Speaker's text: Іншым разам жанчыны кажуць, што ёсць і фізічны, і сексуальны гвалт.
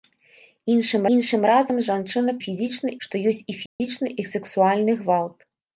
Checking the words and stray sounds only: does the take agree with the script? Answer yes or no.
no